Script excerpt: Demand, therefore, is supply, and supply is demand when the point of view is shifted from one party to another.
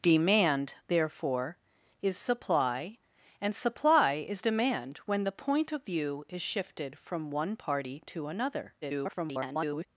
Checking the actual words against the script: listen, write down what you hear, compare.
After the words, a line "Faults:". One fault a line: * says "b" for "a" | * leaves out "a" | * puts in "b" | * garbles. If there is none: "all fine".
Demand, therefore, is supply, and supply is demand when the point of view is shifted from one party to another. [garbled]
Faults:
* garbles